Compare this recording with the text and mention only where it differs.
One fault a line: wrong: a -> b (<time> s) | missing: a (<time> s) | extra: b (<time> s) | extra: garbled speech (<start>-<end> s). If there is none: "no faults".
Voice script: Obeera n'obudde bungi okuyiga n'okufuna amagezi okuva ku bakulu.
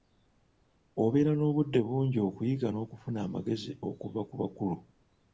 no faults